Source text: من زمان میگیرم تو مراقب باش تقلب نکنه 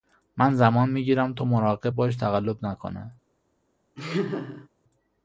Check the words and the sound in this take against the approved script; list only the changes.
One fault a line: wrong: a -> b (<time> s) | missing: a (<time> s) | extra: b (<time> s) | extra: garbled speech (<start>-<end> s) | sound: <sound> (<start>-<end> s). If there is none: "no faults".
sound: laugh (4.0-4.7 s)